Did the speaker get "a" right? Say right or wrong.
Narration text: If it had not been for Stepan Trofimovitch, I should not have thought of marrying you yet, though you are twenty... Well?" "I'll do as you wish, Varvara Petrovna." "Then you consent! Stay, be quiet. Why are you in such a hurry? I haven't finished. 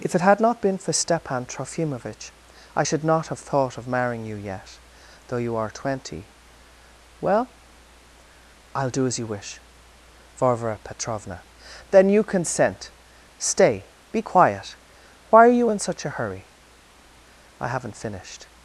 right